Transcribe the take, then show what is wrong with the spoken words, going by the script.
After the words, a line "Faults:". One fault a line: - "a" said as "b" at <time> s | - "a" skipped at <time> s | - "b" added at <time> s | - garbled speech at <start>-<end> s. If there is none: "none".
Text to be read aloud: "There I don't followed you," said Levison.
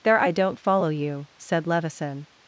"There I don't follow you," said Levison.
Faults:
- "followed" said as "follow" at 0.6 s